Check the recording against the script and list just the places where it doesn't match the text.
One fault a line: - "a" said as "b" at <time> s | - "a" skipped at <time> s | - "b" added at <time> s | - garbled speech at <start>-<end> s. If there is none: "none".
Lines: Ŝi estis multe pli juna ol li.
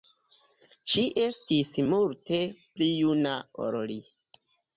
none